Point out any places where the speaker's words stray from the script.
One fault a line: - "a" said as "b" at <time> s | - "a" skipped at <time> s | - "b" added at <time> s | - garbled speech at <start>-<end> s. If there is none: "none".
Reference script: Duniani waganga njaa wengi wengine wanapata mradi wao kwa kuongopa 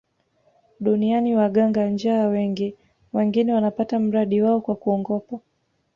none